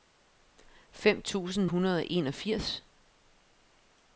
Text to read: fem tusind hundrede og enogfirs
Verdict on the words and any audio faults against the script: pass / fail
pass